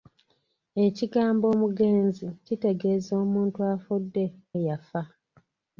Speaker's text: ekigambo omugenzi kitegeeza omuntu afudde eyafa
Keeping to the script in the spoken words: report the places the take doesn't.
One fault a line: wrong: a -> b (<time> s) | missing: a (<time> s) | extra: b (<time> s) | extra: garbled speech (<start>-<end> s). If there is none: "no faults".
no faults